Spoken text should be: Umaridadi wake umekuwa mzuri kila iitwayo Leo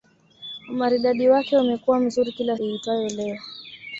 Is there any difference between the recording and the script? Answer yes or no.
no